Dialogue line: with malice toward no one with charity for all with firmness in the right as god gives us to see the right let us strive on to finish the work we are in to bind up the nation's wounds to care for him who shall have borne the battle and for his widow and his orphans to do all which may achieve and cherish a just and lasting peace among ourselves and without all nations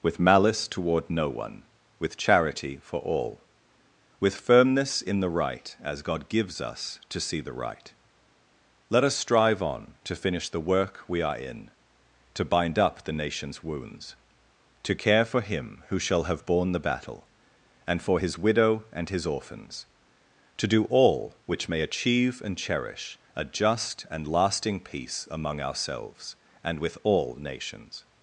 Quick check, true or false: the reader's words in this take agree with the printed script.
false